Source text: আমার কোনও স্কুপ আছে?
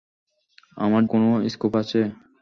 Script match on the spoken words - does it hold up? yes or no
yes